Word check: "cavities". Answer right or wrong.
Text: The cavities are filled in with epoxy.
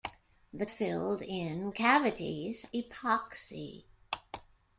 wrong